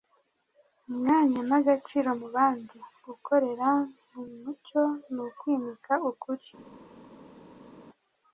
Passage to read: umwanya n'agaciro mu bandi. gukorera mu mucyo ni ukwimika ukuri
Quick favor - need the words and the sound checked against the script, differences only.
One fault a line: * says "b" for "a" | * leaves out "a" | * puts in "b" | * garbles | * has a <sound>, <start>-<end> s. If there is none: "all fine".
all fine